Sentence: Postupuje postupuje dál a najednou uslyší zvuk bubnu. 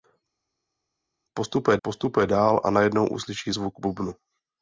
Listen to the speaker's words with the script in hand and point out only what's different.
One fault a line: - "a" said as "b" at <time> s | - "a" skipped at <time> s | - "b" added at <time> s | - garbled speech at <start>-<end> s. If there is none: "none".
none